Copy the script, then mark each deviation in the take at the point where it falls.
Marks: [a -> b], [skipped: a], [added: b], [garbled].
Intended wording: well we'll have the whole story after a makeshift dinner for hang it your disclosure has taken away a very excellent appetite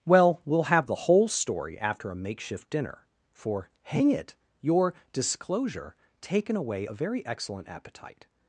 well we'll have the whole story after a makeshift dinner for hang it your disclosure [skipped: has] taken away a very excellent appetite